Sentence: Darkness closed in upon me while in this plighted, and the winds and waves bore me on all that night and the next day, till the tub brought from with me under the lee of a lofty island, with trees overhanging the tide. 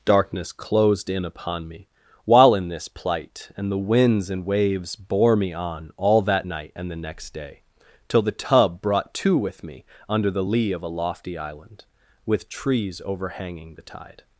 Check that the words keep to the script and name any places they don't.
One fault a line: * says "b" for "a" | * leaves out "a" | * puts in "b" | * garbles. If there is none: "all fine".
* says "plight" for "plighted"
* says "to" for "from"